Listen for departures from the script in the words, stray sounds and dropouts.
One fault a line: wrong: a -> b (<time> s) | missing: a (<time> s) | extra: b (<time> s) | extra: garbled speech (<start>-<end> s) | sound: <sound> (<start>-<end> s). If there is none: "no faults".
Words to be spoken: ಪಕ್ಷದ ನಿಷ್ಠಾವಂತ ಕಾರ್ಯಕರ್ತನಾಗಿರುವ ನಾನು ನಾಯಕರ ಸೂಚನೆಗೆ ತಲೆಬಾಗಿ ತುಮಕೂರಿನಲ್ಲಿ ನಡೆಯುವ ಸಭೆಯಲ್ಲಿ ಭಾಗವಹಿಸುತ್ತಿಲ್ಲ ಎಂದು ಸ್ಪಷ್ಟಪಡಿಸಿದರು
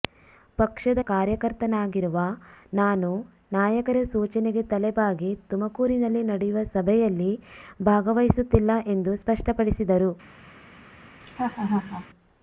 missing: ನಿಷ್ಠಾವಂತ (1.0 s)
sound: laugh (11.2-12.1 s)